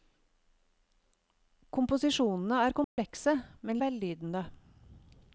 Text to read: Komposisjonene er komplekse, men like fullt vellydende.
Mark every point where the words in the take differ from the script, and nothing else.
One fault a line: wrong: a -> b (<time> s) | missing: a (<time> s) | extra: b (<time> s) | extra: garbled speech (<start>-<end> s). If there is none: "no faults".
missing: like fullt (3.8 s)